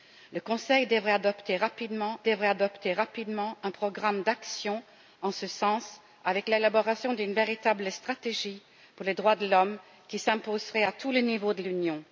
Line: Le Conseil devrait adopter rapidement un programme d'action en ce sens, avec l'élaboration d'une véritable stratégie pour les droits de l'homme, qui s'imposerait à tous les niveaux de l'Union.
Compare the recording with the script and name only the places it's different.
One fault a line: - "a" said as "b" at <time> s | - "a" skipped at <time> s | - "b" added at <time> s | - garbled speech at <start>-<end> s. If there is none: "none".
- "devrait adopter rapidement" added at 2.2 s